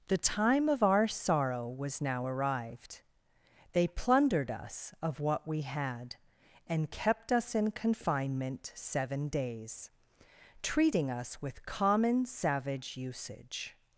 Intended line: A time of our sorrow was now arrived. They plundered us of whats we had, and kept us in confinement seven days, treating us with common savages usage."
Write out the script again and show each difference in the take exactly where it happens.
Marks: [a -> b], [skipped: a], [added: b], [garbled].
[A -> The] time of our sorrow was now arrived. They plundered us of [whats -> what] we had, and kept us in confinement seven days, treating us with common [savages -> savage] usage."